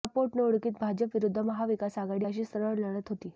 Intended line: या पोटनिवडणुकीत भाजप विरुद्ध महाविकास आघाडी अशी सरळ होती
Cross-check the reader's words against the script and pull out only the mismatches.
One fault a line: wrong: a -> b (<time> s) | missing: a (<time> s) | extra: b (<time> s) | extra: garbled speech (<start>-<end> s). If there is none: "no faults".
extra: लढत (2.8 s)